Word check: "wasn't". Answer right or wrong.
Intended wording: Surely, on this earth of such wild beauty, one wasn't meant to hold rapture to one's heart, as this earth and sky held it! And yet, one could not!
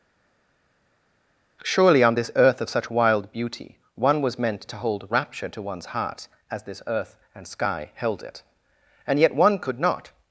wrong